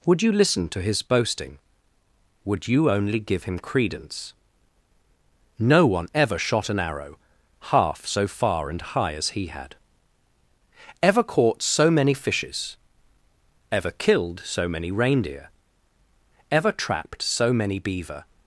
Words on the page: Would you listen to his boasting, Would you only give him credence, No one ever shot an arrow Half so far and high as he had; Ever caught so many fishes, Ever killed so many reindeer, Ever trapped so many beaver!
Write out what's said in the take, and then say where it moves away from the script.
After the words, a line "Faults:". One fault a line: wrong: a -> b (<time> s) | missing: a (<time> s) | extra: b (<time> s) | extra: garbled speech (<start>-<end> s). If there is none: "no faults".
Would you listen to his boasting, Would you only give him credence, No one ever shot an arrow Half so far and high as he had; Ever caught so many fishes, Ever killed so many reindeer, Ever trapped so many beaver!
Faults:
no faults